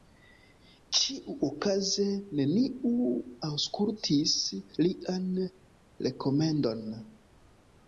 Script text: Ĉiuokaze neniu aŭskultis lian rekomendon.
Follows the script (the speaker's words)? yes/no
yes